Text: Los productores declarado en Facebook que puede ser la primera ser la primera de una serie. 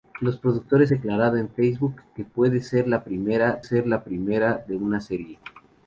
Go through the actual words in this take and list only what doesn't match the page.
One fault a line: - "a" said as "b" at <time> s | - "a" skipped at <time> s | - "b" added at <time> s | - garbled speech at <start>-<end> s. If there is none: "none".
none